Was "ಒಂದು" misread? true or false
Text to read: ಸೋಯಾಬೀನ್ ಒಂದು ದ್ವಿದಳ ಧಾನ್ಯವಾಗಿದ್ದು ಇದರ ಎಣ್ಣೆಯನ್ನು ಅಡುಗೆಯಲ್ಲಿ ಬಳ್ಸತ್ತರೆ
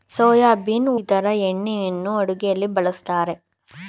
true